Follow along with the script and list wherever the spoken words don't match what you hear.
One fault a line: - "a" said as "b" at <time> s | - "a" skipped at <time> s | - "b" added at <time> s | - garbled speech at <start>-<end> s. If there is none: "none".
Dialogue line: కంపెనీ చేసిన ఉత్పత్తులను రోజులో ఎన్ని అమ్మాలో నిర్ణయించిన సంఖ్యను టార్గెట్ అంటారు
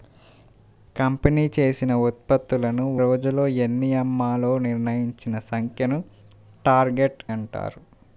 none